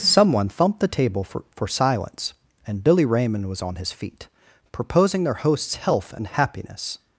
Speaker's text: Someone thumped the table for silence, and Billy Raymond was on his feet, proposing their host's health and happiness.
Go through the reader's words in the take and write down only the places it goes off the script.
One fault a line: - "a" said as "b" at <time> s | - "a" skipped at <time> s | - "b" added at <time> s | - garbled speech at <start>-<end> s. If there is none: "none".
- "for" added at 1.5 s